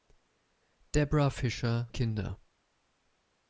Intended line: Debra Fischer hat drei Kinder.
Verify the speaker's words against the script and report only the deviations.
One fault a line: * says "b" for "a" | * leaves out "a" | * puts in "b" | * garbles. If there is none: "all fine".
* leaves out "hat drei"